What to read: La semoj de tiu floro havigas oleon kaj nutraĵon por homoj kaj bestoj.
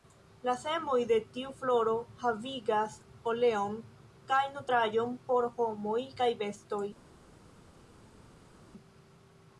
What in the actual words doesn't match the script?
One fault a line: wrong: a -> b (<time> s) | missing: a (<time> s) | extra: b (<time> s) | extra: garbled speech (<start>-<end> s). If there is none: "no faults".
no faults